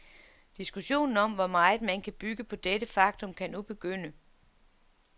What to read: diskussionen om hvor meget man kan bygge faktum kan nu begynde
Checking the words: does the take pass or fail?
fail